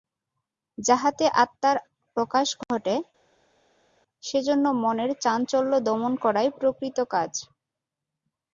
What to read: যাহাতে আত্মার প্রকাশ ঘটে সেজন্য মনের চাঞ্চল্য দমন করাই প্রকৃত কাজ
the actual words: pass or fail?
pass